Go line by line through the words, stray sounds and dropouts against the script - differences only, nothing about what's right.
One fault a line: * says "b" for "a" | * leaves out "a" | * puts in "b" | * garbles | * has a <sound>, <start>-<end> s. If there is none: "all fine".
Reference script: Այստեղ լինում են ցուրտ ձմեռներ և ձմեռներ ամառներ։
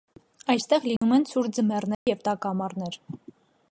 * has a dropout, 1.0-1.0 s
* has a dropout, 1.9-2.1 s
* says "տաք" for "ձմեռներ"